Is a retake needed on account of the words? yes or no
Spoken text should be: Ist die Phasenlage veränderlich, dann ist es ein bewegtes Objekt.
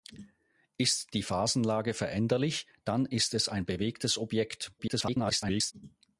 yes